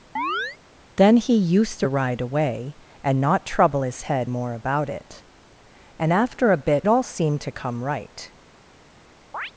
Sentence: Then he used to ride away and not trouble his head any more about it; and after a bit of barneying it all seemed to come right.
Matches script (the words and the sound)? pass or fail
fail